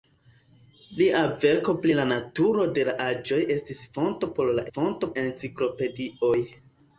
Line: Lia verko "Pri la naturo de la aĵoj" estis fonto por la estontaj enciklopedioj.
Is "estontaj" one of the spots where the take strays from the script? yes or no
yes